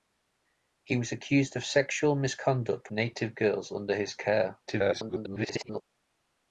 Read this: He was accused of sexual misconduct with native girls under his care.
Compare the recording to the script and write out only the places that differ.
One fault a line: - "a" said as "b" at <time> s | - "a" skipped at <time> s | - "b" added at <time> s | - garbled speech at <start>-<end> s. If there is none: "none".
- "with" skipped at 2.9 s
- garbled speech at 4.7-5.8 s